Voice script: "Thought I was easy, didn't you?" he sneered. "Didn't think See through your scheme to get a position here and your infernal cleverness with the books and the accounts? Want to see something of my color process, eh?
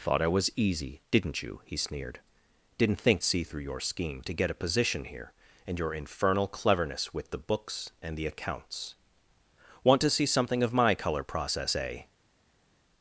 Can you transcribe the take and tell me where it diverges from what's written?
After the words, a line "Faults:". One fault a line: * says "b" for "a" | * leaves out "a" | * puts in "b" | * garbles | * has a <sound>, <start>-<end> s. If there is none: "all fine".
"Thought I was easy, didn't you?" he sneered. "Didn't think See through your scheme to get a position here and your infernal cleverness with the books and the accounts? Want to see something of my color process, eh?
Faults:
all fine